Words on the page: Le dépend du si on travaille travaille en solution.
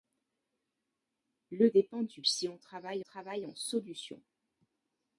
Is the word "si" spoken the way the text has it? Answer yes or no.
yes